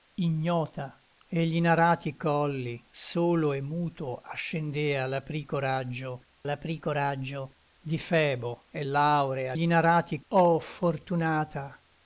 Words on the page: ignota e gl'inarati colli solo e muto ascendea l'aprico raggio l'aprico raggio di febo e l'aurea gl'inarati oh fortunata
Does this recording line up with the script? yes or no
yes